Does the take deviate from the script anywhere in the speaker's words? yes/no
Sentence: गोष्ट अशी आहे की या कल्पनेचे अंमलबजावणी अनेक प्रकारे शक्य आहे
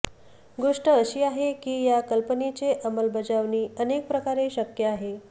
no